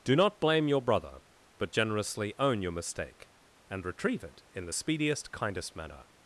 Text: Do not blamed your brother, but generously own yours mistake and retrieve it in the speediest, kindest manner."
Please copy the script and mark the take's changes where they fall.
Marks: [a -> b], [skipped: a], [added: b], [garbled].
Do not [blamed -> blame] your brother, but generously own [yours -> your] mistake and retrieve it in the speediest, kindest manner."